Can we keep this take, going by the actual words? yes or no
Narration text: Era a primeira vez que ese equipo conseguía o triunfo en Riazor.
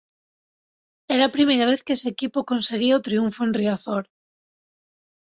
yes